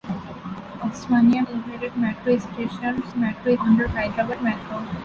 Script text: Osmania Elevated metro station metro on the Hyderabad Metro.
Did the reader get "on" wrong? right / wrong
right